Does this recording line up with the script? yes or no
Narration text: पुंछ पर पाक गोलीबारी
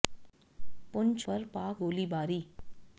yes